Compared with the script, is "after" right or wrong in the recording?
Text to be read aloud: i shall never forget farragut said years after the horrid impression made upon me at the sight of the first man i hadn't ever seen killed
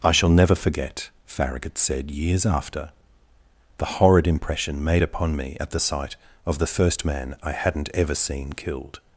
right